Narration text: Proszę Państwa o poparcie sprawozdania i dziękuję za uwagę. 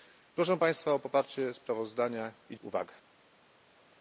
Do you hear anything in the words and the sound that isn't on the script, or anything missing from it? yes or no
yes